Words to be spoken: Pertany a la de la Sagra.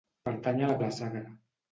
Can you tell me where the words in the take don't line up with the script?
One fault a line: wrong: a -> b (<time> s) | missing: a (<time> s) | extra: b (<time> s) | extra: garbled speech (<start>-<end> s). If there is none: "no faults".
no faults